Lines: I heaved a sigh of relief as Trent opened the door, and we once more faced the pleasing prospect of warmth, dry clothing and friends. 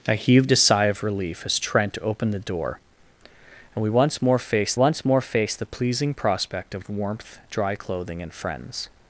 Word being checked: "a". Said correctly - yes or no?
yes